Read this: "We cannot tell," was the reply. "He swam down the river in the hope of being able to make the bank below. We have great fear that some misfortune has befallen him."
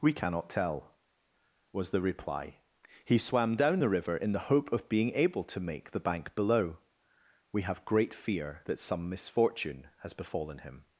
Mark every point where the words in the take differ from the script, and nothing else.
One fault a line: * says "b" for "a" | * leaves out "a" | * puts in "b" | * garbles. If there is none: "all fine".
all fine